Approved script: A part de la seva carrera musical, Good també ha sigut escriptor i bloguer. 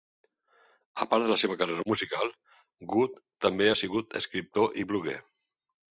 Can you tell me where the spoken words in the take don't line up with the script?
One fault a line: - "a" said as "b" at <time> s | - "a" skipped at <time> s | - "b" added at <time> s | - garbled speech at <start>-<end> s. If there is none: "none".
none